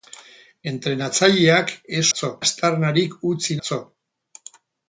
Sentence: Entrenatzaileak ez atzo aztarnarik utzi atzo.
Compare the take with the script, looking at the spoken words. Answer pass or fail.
pass